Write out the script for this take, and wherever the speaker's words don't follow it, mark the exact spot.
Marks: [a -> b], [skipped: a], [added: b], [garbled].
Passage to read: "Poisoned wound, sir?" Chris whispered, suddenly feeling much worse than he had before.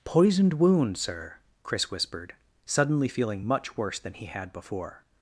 "Poisoned wound, sir?" Chris whispered, suddenly feeling much worse than he had before.